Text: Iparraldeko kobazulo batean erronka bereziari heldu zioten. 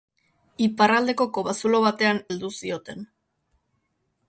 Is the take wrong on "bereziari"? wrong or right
wrong